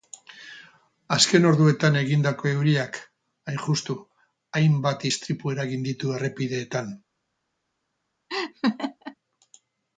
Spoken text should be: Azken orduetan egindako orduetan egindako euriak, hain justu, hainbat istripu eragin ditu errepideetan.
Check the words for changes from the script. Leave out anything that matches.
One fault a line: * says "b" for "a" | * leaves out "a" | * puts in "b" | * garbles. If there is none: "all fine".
* leaves out "orduetan egindako"